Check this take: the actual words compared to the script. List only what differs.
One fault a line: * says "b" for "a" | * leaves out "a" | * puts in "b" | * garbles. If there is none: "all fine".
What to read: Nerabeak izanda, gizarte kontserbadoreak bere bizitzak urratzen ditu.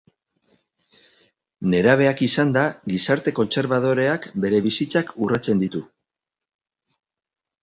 all fine